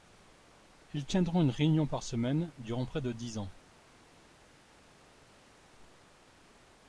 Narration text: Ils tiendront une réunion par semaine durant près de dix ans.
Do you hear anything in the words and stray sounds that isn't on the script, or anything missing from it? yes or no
no